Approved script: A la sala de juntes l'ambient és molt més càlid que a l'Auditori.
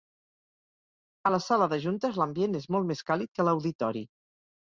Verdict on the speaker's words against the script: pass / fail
pass